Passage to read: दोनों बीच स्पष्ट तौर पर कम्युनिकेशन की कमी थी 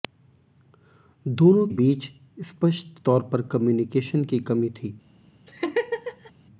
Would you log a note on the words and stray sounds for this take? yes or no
yes